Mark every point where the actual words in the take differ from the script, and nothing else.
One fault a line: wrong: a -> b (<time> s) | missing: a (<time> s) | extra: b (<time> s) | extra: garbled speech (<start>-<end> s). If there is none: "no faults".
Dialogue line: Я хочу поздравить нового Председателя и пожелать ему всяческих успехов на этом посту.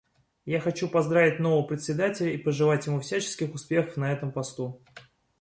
no faults